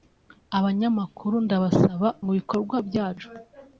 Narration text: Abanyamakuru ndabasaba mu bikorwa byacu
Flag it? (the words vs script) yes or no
no